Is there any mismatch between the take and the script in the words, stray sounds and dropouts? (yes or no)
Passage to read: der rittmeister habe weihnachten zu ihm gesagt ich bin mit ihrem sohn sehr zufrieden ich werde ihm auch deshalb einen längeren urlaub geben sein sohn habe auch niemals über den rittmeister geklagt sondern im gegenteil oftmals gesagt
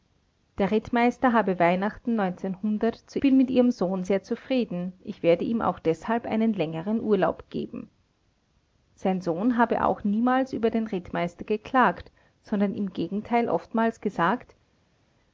yes